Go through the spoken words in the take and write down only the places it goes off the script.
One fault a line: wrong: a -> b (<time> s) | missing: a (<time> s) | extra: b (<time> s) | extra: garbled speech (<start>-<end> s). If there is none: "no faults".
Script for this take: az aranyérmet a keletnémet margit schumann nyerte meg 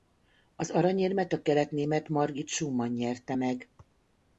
no faults